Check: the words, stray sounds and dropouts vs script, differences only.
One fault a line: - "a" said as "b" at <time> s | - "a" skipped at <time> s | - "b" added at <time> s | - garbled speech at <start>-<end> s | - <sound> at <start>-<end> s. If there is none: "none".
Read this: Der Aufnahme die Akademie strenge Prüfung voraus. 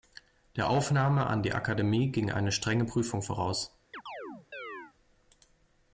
- "an" added at 1.3 s
- "ging eine" added at 2.1 s
- chirp at 3.9-4.9 s